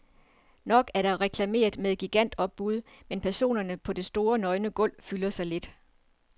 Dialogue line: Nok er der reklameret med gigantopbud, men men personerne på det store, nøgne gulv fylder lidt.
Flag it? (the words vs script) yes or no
yes